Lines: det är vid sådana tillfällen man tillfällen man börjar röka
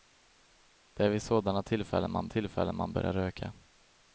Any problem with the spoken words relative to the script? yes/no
no